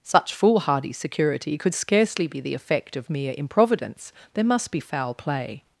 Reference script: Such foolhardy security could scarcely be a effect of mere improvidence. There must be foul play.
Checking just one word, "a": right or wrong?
wrong